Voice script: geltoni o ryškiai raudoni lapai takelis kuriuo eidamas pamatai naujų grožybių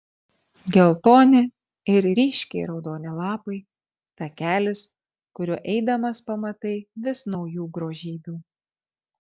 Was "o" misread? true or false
true